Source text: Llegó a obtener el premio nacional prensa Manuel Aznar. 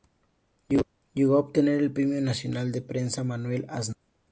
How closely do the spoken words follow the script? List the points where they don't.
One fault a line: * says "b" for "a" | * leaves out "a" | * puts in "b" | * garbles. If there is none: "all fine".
* puts in "de"